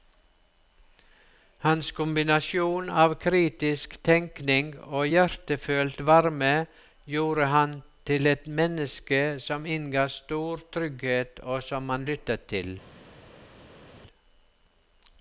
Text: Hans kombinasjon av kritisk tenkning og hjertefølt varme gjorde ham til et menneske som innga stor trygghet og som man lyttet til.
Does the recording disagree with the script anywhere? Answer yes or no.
no